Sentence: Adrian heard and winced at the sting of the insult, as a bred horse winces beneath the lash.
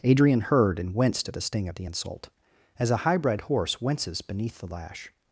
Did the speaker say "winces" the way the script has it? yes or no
yes